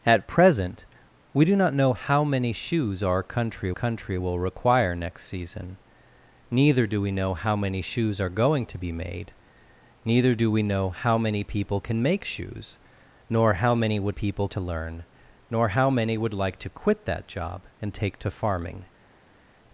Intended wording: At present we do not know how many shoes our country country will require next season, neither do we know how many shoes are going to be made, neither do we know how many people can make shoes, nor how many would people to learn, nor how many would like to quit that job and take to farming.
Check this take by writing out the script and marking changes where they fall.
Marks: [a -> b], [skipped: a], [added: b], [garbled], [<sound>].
At present we do not know how many shoes our country country will require next season, neither do we know how many shoes are going to be made, neither do we know how many people can make shoes, nor how many would people to learn, nor how many would like to quit that job and take to farming.